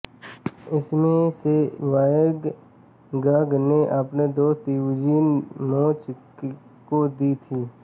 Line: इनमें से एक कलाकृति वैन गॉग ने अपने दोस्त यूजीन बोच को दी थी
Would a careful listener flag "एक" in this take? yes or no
yes